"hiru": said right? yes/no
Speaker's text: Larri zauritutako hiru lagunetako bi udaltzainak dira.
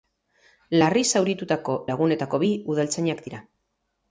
no